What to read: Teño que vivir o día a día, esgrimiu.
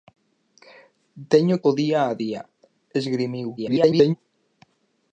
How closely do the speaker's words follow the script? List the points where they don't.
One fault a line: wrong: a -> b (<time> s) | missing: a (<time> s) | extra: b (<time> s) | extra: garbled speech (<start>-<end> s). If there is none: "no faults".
missing: que vivir (1.6 s)
extra: garbled speech (3.6-4.2 s)